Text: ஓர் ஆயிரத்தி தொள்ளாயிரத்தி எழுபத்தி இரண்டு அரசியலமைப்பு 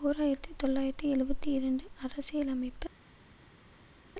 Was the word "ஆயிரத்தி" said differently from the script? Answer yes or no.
no